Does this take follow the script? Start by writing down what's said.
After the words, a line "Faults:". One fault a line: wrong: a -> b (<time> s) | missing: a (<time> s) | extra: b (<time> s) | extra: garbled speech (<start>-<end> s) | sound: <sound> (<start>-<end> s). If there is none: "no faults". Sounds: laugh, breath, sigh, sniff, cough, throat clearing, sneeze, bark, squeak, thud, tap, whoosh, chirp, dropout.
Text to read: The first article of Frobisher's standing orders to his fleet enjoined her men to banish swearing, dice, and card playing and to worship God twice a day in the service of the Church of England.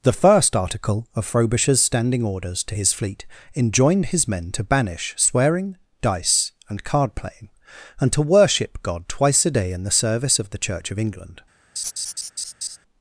The first article of Frobisher's standing orders to his fleet enjoined his men to banish swearing, dice, and card playing and to worship God twice a day in the service of the Church of England.
Faults:
wrong: her -> his (4.1 s)
sound: laugh (11.8-12.8 s)